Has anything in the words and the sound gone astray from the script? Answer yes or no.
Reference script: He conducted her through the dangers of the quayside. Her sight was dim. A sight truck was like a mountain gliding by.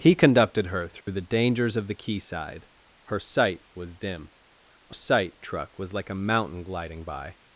yes